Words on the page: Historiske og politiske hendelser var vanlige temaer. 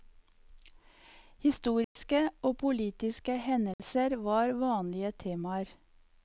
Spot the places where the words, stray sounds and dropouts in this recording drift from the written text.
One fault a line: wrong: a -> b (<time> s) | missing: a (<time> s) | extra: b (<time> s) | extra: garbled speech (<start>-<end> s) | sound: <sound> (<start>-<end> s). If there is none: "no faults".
sound: dropout (1.8-2.0 s)
sound: dropout (3.7-3.8 s)